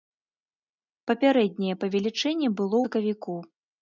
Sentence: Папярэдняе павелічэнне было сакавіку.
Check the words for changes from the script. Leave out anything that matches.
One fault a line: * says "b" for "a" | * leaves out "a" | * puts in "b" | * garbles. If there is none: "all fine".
all fine